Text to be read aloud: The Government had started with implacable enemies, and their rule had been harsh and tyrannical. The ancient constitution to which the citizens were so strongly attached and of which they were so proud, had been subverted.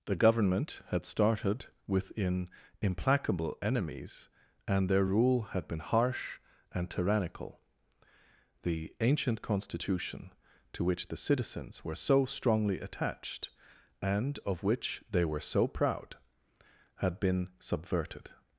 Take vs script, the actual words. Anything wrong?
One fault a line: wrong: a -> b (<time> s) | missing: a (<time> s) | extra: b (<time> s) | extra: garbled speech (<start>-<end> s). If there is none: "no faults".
wrong: with -> within (1.9 s)